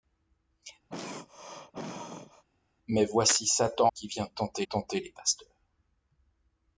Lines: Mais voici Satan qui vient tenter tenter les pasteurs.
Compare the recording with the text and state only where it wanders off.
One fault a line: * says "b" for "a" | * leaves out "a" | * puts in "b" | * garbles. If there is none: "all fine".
all fine